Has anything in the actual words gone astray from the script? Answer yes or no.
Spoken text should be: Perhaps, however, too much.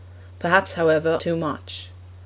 no